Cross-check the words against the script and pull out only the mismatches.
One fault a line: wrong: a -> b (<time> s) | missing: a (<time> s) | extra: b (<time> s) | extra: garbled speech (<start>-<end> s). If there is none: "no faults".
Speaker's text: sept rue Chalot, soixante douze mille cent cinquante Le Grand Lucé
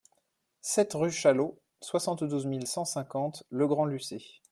no faults